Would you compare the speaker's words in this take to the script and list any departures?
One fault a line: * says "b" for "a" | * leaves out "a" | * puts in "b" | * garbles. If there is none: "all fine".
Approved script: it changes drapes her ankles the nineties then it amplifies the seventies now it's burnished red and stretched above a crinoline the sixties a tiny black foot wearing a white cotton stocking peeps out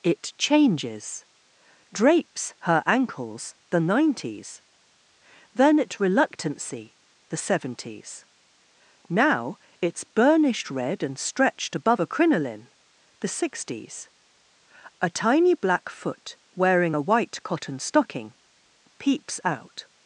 * says "reluctancy" for "amplifies"